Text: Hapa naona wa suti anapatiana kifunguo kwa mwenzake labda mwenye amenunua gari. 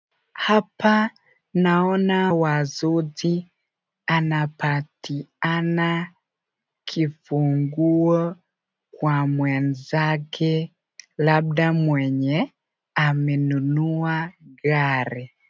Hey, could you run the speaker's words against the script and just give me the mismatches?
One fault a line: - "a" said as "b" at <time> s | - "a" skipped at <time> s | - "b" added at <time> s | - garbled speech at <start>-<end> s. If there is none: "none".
none